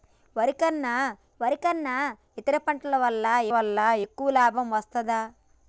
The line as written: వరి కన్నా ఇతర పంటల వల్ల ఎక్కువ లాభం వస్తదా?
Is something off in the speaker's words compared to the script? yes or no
yes